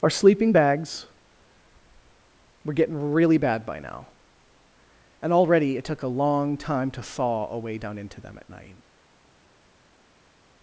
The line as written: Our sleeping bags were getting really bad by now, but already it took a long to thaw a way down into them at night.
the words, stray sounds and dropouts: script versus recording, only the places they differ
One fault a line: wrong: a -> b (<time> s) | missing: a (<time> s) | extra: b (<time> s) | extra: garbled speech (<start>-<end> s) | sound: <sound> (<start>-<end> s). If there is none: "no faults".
wrong: but -> and (5.2 s)
extra: time (6.6 s)